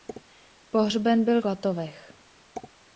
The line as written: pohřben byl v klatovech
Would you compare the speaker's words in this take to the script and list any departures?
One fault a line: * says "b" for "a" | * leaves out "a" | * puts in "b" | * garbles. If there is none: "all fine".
* leaves out "v"